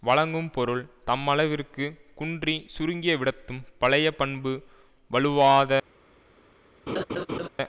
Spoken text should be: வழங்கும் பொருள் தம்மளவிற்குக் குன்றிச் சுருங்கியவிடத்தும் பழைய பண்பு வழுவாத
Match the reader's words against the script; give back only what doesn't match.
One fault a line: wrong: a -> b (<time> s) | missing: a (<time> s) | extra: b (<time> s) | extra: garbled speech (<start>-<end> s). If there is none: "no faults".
no faults